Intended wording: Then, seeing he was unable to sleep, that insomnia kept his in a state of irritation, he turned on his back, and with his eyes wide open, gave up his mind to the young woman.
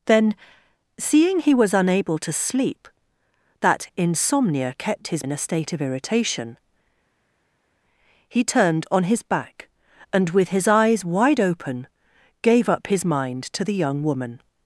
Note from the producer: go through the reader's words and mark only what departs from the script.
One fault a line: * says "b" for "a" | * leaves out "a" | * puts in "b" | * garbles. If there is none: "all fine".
all fine